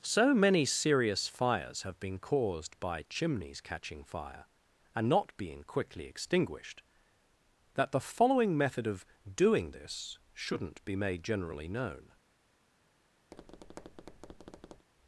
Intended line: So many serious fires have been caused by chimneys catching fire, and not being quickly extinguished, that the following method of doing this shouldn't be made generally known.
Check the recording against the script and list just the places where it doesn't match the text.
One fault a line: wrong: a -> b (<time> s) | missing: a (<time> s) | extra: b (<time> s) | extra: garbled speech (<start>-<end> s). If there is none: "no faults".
no faults